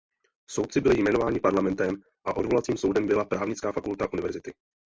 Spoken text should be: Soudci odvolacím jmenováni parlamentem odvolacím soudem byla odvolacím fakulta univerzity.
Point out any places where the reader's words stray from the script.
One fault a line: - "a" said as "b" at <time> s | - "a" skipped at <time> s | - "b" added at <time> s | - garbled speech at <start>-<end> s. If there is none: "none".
- "odvolacím" said as "byli" at 0.8 s
- "a" added at 2.2 s
- "odvolacím" said as "právnická" at 3.2 s